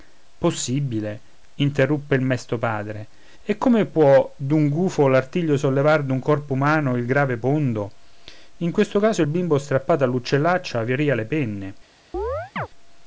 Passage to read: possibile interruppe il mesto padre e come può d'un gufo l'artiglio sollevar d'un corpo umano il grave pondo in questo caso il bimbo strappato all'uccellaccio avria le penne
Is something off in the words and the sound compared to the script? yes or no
yes